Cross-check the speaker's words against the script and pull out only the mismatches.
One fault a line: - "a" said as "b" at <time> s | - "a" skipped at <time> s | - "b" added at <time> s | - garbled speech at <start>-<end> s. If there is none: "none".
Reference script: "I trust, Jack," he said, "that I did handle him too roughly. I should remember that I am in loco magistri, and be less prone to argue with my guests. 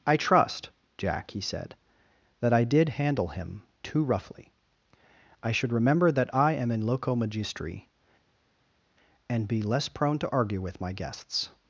none